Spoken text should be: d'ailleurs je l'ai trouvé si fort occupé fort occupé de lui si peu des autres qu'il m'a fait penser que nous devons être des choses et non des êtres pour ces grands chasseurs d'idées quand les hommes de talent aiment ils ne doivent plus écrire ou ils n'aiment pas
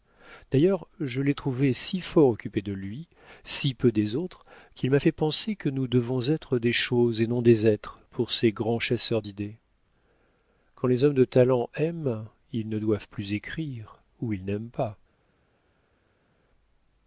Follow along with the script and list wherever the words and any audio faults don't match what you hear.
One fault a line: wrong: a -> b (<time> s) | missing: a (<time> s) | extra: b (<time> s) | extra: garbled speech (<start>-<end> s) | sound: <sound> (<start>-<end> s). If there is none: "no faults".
missing: fort occupé (2.6 s)